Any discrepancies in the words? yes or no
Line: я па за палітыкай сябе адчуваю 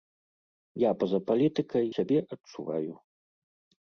no